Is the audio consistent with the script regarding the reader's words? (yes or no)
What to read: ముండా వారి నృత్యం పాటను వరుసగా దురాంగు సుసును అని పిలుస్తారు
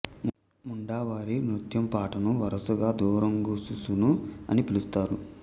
yes